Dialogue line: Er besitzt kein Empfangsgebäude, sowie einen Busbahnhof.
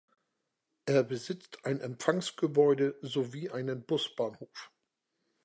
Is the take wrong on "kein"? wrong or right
wrong